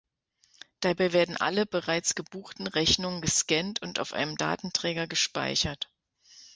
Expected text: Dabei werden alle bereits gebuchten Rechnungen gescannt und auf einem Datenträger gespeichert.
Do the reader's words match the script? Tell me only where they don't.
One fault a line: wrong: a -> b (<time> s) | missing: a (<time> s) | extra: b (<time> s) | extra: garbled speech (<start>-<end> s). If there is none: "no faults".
no faults